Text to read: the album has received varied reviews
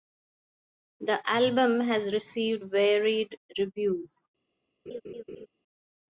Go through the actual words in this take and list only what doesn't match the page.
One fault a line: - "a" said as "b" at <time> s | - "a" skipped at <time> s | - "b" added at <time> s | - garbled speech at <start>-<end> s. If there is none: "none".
none